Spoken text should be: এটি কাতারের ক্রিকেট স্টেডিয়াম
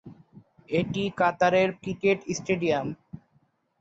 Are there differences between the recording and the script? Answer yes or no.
no